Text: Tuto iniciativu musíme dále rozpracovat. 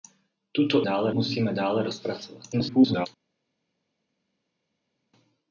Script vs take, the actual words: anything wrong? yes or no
yes